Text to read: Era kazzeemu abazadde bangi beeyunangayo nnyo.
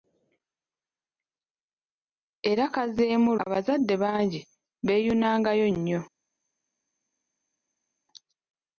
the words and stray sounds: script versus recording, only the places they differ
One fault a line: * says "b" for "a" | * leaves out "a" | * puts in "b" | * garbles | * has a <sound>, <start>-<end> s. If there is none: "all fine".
all fine